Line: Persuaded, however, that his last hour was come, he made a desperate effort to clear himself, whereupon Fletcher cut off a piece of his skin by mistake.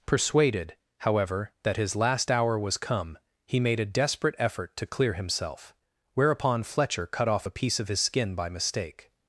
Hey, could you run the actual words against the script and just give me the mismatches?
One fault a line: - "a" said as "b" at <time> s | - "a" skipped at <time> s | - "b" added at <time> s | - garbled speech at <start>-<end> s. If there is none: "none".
none